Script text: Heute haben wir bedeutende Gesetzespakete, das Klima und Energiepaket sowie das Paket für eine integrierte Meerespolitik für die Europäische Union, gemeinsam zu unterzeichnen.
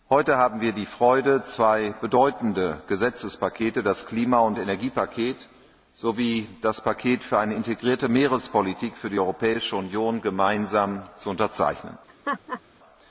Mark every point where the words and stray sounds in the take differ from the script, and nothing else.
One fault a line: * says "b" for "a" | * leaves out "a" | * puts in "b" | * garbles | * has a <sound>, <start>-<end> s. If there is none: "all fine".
* puts in "die Freude zwei"
* has a laugh, 12.1-12.6 s